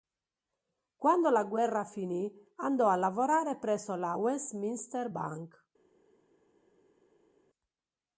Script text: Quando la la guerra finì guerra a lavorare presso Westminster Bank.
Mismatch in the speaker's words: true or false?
true